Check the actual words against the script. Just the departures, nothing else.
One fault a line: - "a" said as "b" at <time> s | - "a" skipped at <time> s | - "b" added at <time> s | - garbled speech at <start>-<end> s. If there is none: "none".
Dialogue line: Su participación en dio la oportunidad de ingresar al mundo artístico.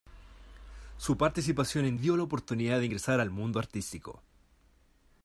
none